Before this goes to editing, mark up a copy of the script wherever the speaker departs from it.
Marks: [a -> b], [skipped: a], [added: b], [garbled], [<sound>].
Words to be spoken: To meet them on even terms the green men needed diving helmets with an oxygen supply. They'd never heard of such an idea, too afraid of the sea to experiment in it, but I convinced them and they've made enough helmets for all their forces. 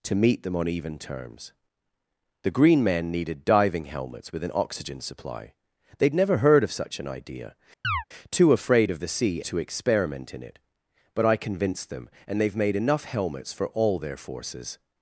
To meet them on even terms the green men needed diving helmets with an oxygen supply. They'd never heard of such an idea, [chirp] too afraid of the sea to experiment in it, but I convinced them and they've made enough helmets for all their forces.